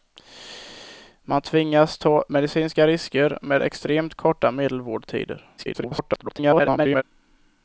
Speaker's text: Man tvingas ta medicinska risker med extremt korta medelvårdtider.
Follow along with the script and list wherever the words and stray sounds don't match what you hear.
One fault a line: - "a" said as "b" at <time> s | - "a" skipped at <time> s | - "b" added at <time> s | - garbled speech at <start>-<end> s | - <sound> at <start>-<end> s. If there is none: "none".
- garbled speech at 5.6-7.0 s